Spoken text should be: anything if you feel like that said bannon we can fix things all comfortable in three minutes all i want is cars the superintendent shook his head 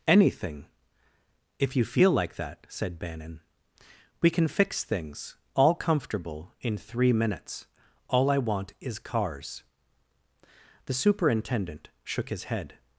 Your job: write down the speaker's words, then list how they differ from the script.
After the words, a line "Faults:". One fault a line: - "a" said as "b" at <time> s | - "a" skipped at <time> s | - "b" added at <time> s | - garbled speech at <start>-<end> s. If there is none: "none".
anything if you feel like that said bannon we can fix things all comfortable in three minutes all i want is cars the superintendent shook his head
Faults:
none